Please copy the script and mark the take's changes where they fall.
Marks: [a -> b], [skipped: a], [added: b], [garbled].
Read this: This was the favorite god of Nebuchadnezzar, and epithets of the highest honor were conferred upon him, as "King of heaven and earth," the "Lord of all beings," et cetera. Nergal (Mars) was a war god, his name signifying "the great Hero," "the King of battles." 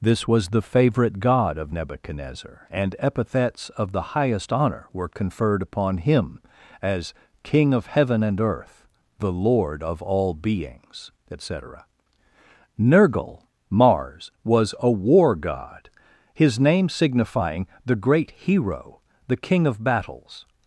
This was the favorite god of Nebuchadnezzar, and epithets of the highest honor were conferred upon him, as "King of heaven and earth," the "Lord of all beings," et cetera. Nergal (Mars) was a war god, his name signifying "the great Hero," "the King of battles."